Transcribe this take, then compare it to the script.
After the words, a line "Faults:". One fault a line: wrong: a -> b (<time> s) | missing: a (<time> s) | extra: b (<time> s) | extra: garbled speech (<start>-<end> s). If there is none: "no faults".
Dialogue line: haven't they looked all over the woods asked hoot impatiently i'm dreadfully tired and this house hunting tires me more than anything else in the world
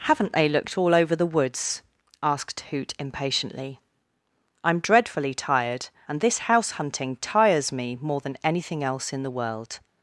haven't they looked all over the woods asked hoot impatiently i'm dreadfully tired and this house hunting tires me more than anything else in the world
Faults:
no faults